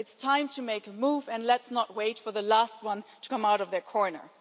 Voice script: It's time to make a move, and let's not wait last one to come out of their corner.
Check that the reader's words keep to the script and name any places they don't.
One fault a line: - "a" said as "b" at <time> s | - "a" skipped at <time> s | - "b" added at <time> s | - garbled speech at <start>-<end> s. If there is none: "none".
- "for the" added at 2.2 s